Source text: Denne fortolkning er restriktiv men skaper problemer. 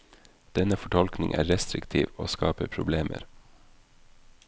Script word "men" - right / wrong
wrong